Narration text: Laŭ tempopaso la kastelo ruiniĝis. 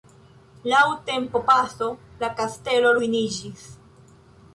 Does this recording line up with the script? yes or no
yes